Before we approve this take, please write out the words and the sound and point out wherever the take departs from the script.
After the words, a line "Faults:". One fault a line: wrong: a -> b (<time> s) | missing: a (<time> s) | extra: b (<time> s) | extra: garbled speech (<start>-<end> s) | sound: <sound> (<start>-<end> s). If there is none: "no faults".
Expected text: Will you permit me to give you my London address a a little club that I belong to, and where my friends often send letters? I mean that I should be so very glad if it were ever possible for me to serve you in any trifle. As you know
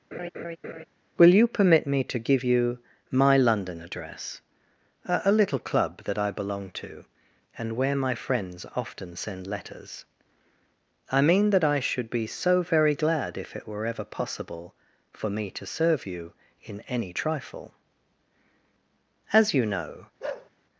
Will you permit me to give you my London address a a little club that I belong to, and where my friends often send letters? I mean that I should be so very glad if it were ever possible for me to serve you in any trifle. As you know
Faults:
sound: laugh (0.1-0.8 s)
sound: bark (20.2-20.5 s)